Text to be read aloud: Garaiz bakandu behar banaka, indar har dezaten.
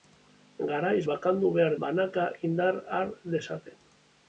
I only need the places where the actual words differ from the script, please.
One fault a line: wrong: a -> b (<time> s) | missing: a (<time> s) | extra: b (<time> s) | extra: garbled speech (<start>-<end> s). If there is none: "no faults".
no faults